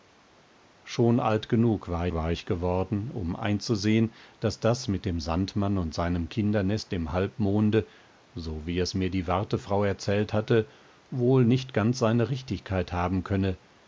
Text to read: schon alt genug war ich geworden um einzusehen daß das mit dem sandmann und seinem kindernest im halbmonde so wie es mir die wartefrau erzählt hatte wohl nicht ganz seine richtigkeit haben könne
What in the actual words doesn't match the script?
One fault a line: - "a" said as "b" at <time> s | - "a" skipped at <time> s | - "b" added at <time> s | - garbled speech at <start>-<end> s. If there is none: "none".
- "war" added at 2.1 s